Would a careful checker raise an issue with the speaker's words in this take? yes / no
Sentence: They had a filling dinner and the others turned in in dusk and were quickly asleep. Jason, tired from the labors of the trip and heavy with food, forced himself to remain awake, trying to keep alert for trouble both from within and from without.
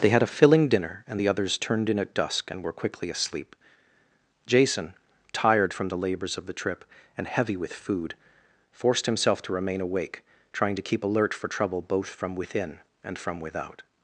yes